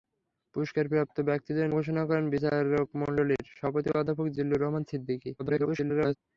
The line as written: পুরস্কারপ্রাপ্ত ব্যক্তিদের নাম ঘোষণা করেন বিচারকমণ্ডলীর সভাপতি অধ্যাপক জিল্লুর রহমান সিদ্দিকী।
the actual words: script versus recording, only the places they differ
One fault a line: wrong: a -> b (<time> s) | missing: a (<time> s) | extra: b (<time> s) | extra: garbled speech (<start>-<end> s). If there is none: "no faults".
missing: নাম (1.7 s)
extra: garbled speech (5.4-6.2 s)